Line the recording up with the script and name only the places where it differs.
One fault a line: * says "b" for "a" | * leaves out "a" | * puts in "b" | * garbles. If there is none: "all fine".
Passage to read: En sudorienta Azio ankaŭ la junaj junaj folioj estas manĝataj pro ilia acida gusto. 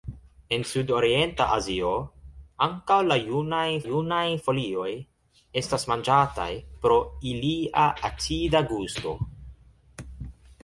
all fine